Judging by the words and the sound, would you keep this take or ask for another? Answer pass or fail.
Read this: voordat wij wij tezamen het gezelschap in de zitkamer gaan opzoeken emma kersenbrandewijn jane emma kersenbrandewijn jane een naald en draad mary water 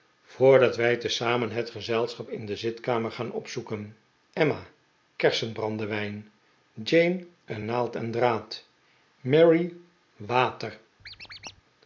fail